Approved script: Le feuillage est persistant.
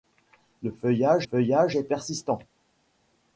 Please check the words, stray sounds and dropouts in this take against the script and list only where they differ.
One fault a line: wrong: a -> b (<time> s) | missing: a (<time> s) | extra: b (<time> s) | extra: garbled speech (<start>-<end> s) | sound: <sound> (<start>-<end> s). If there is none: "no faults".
extra: feuillage (1.2 s)